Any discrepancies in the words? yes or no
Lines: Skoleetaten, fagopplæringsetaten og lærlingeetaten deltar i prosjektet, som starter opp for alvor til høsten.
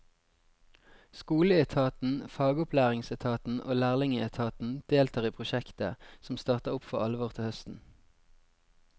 no